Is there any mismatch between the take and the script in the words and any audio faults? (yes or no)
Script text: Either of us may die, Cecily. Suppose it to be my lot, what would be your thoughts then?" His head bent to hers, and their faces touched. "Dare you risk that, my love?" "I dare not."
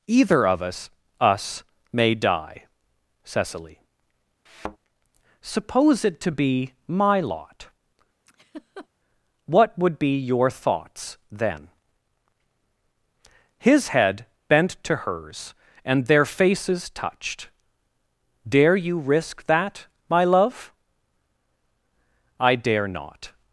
yes